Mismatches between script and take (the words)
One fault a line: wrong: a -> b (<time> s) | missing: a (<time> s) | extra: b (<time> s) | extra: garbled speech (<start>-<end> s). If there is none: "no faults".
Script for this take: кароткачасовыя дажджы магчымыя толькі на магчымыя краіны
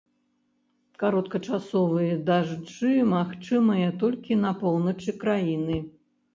wrong: магчымыя -> поўначы (4.6 s)